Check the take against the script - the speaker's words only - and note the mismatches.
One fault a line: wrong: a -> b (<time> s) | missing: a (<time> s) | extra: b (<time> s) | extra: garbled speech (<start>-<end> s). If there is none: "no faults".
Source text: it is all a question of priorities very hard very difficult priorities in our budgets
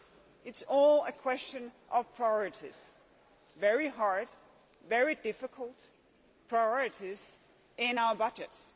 no faults